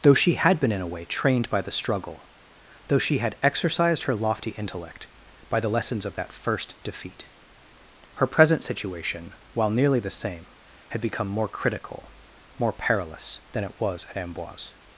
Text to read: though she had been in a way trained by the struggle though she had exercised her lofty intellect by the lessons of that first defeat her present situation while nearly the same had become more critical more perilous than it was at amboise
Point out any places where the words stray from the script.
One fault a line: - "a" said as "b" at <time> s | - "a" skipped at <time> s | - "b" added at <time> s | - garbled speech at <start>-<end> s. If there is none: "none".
none